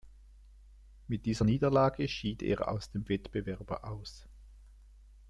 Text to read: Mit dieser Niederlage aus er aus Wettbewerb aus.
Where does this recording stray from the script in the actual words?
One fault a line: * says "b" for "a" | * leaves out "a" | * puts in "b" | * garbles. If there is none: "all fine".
* says "schied" for "aus"
* puts in "dem"